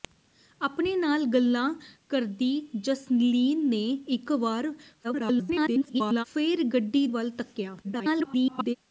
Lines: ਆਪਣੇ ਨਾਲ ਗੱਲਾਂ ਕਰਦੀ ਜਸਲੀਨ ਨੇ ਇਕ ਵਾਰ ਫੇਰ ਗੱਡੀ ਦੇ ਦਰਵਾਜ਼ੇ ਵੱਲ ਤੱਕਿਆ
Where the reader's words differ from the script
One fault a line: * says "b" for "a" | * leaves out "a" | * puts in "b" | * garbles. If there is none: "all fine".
* garbles
* leaves out "ਦੇ ਦਰਵਾਜ਼ੇ"
* garbles